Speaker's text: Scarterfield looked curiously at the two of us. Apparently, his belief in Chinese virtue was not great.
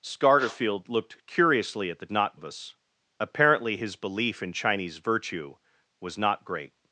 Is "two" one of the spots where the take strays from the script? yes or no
yes